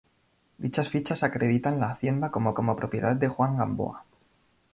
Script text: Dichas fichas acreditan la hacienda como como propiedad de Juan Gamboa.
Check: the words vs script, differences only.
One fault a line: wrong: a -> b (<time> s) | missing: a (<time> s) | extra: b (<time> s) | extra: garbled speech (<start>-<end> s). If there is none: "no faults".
no faults